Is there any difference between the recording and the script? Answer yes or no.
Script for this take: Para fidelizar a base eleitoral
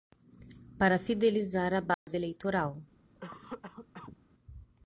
no